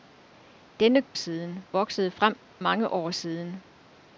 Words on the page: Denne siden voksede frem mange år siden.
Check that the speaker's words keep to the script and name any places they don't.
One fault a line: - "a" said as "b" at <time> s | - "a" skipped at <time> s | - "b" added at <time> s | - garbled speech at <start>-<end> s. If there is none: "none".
none